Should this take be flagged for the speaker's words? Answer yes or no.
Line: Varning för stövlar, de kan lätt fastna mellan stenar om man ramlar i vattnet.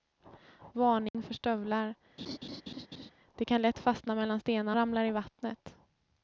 yes